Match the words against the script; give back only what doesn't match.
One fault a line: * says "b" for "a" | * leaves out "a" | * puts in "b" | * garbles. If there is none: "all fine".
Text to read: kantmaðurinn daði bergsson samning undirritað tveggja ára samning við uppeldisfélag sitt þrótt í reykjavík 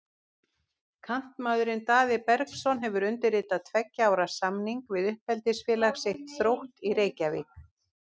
* says "hefur" for "samning"